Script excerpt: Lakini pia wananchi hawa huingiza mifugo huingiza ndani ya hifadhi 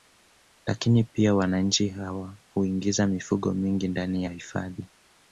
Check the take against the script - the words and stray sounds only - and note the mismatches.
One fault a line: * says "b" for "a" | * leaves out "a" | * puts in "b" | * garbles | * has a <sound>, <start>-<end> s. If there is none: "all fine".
* says "mingi" for "huingiza"